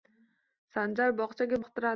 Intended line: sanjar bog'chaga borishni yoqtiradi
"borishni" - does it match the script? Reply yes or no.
no